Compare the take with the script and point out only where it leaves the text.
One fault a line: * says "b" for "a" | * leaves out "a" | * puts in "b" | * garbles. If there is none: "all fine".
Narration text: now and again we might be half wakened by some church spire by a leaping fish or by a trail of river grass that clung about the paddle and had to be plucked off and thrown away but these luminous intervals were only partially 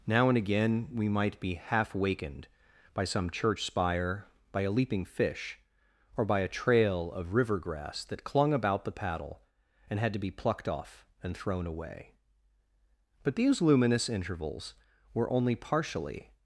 all fine